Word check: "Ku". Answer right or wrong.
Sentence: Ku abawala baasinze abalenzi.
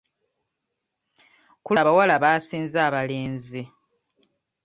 right